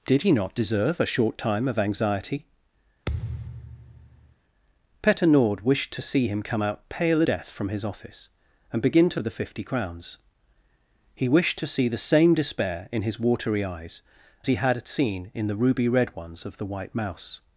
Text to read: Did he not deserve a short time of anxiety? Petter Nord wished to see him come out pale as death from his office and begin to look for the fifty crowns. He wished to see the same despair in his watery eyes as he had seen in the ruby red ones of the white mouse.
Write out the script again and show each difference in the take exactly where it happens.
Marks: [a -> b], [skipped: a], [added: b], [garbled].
Did he not deserve a short time of anxiety? Petter Nord wished to see him come out pale [skipped: as] death from his office and begin to [skipped: look for] the fifty crowns. He wished to see the same despair in his watery eyes [skipped: as] he had seen in the ruby red ones of the white mouse.